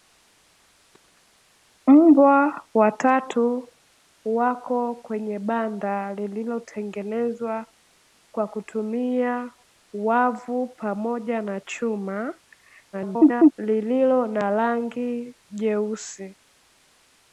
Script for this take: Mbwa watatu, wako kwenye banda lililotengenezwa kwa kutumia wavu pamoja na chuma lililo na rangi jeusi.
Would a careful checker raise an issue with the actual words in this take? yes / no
yes